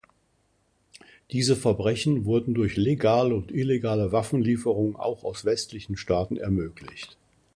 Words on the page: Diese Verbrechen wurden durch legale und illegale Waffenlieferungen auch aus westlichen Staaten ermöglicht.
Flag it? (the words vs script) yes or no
no